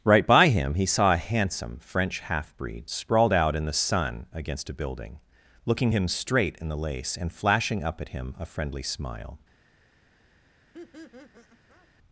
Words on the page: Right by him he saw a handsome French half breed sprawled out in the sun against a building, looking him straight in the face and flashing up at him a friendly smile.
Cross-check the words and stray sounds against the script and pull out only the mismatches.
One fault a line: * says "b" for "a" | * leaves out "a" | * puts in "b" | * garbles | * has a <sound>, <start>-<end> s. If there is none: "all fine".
* says "lace" for "face"
* has a laugh, 10.7-11.9 s